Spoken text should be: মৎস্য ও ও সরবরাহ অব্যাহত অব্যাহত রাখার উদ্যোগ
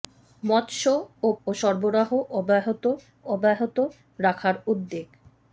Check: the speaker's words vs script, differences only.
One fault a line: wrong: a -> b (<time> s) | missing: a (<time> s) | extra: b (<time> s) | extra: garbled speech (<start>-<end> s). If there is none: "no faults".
no faults